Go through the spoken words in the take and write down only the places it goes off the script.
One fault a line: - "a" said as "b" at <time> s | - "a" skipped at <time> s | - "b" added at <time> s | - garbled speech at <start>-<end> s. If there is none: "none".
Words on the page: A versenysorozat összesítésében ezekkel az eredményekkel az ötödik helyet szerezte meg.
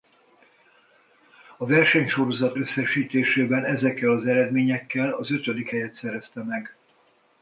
none